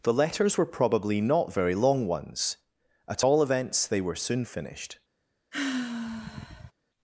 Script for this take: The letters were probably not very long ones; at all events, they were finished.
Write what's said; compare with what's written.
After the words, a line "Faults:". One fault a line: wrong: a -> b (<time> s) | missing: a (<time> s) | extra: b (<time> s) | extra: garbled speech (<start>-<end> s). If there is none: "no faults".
The letters were probably not very long ones; at all events, they were soon finished.
Faults:
extra: soon (4.2 s)